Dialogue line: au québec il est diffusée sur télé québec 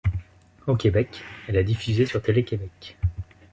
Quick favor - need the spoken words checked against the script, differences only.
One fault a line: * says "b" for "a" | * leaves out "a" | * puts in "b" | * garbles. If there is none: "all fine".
* says "elle" for "il"